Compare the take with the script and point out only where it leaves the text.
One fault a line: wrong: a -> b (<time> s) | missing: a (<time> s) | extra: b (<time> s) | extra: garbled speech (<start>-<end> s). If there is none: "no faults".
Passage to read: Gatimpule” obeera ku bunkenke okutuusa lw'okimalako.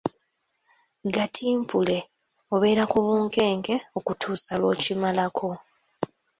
no faults